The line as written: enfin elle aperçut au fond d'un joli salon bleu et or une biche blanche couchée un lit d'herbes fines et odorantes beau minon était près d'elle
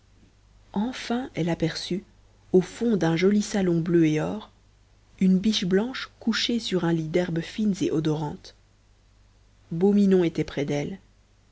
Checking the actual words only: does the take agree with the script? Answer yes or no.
no